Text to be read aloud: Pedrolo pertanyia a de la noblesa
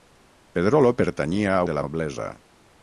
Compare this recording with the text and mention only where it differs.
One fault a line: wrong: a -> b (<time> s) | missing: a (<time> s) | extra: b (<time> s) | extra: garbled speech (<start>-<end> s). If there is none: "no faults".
no faults